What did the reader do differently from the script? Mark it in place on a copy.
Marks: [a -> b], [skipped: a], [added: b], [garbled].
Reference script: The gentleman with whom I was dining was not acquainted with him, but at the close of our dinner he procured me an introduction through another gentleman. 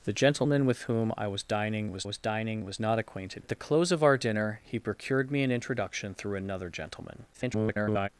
The gentleman with whom I was dining was [not acquainted with him, but -> was dining was not acquainted] at the close of our dinner he procured me an introduction through another gentleman. [garbled]